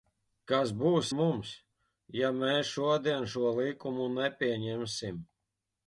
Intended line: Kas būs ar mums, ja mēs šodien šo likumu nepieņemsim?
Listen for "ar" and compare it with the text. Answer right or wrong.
wrong